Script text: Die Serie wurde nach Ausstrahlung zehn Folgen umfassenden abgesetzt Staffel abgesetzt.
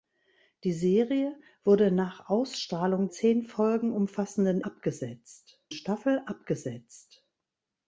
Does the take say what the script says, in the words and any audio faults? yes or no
yes